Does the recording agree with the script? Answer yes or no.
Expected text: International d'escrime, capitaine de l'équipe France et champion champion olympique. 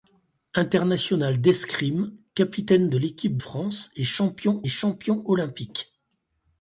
yes